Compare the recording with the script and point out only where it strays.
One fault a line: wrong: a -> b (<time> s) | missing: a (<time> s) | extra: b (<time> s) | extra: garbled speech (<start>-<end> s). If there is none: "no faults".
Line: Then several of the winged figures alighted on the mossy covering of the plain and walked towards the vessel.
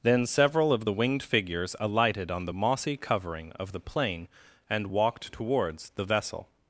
no faults